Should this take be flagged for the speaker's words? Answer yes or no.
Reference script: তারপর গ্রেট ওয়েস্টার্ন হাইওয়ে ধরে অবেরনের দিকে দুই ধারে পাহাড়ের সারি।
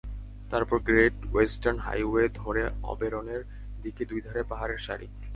no